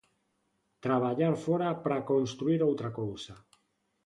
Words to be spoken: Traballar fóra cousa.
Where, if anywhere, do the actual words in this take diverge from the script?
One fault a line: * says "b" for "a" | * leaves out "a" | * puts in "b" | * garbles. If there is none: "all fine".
* puts in "para construír outra"